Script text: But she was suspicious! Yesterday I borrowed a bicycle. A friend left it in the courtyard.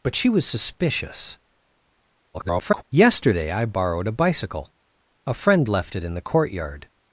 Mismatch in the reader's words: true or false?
true